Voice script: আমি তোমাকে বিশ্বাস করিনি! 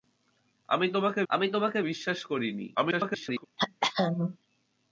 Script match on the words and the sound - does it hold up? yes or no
no